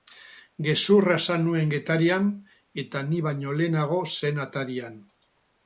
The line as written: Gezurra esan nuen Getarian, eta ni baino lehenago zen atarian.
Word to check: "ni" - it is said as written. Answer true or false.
true